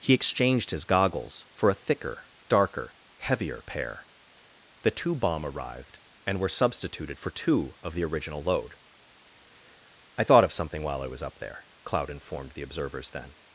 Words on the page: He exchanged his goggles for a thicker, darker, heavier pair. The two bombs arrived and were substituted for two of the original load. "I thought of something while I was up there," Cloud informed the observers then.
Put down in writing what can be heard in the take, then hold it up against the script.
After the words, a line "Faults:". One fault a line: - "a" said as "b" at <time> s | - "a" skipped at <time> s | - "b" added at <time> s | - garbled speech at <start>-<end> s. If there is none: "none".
He exchanged his goggles for a thicker, darker, heavier pair. The two bomb arrived and were substituted for two of the original load. "I thought of something while I was up there," Cloud informed the observers then.
Faults:
- "bombs" said as "bomb" at 5.1 s